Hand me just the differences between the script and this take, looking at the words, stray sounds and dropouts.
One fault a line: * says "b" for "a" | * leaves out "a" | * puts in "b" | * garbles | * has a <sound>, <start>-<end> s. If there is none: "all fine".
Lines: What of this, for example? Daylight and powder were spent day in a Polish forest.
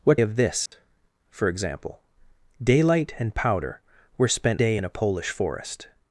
* has a dropout, 0.7-0.7 s